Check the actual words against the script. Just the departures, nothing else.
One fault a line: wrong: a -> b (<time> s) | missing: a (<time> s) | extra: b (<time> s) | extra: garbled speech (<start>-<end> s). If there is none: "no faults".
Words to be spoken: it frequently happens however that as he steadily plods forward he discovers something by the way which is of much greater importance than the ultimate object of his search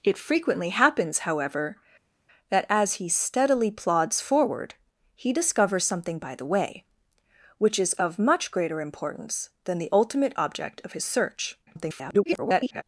extra: garbled speech (11.7-12.8 s)